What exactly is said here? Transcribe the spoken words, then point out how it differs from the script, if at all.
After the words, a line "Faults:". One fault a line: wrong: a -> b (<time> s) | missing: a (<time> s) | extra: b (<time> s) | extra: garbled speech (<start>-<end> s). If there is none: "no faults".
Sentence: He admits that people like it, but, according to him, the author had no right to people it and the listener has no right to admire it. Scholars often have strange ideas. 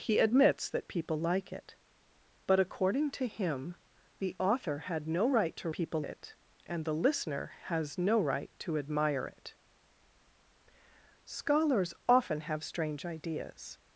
He admits that people like it, but, according to him, the author had no right to people it and the listener has no right to admire it. Scholars often have strange ideas.
Faults:
no faults